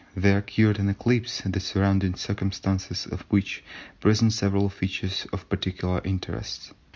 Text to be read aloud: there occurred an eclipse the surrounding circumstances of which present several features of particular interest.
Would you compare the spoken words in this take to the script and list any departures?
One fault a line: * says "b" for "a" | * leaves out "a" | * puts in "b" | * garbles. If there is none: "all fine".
all fine